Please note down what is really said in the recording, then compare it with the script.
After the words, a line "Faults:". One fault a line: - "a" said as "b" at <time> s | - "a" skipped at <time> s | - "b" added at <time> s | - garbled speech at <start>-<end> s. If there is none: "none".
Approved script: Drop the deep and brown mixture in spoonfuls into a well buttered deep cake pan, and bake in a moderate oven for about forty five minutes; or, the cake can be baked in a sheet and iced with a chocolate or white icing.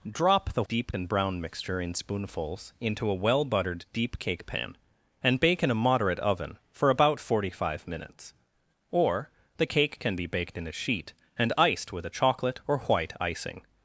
Drop the deep and brown mixture in spoonfuls into a well buttered deep cake pan, and bake in a moderate oven for about forty five minutes; or, the cake can be baked in a sheet and iced with a chocolate or white icing.
Faults:
none